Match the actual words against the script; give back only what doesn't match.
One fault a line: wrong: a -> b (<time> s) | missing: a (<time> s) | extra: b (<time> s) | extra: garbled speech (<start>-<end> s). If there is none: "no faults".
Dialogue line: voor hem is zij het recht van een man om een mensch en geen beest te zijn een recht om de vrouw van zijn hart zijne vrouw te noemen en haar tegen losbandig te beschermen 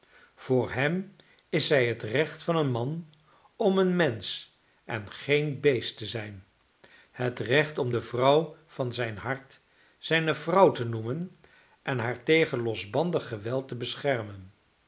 wrong: een -> het (7.1 s)
extra: geweld (13.3 s)